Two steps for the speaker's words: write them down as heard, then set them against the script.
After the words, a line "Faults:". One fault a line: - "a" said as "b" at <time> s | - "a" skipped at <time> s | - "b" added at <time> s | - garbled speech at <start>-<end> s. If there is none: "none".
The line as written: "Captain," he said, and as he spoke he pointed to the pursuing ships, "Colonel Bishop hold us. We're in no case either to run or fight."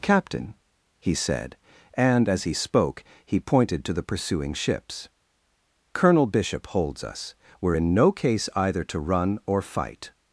"Captain," he said, and as he spoke he pointed to the pursuing ships, "Colonel Bishop holds us. We're in no case either to run or fight."
Faults:
- "hold" said as "holds" at 6.7 s